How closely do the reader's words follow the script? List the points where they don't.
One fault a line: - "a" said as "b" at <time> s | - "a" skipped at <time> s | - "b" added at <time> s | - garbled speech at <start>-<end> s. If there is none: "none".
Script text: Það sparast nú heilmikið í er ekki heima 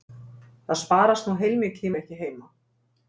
none